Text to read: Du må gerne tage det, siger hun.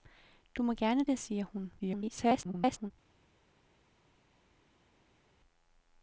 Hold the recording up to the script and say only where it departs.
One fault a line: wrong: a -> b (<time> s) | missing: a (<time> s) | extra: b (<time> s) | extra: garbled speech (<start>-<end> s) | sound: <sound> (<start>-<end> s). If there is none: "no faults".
missing: tage (1.1 s)
extra: garbled speech (1.8-2.9 s)